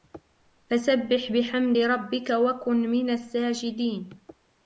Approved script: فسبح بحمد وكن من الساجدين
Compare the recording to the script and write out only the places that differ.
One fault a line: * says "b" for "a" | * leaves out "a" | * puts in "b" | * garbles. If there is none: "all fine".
* puts in "ربك"